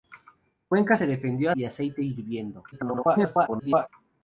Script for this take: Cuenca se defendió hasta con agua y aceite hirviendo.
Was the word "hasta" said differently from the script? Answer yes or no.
yes